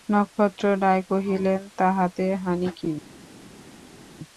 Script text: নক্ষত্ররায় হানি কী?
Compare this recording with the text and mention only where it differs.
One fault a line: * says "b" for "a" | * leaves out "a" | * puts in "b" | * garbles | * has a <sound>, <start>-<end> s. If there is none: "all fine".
* puts in "কহিলেন তাহাতে"